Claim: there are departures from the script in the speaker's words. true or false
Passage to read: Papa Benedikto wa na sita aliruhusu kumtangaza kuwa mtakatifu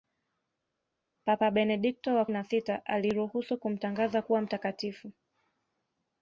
false